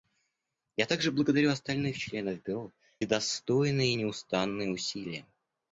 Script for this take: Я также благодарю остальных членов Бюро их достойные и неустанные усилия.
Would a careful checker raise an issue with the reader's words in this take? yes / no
no